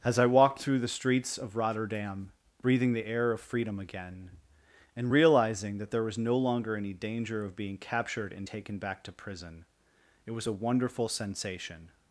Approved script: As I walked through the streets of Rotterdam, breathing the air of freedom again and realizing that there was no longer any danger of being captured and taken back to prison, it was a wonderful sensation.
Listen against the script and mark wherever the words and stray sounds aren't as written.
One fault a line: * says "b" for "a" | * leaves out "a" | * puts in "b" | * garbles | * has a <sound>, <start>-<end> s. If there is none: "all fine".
all fine